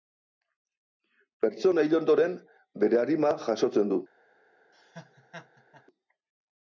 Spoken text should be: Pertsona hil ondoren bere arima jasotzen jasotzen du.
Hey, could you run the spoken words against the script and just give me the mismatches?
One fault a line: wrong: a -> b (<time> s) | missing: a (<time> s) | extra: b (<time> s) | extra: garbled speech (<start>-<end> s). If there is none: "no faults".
missing: jasotzen (3.9 s)